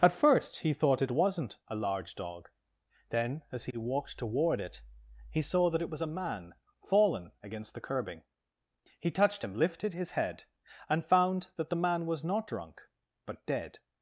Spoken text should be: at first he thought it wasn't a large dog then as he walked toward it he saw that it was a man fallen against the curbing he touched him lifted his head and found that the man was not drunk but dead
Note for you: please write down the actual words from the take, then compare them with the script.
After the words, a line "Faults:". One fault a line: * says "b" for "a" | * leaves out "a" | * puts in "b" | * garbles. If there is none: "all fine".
at first he thought it wasn't a large dog then as he walked toward it he saw that it was a man fallen against the curbing he touched him lifted his head and found that the man was not drunk but dead
Faults:
all fine